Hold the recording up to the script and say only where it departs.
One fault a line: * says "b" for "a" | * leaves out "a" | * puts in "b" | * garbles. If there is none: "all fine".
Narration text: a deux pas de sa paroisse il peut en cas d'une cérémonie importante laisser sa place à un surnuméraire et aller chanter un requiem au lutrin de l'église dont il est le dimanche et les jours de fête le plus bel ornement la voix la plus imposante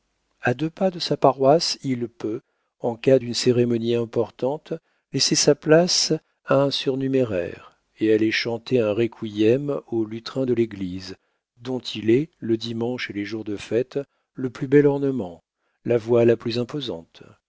all fine